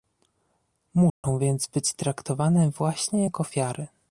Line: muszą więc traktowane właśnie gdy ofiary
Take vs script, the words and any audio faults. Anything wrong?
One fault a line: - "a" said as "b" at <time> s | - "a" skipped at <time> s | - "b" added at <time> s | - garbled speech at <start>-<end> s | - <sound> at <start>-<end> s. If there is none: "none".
- dropout at 1.1-1.2 s
- "być" added at 1.7 s
- "gdy" said as "jak" at 3.2 s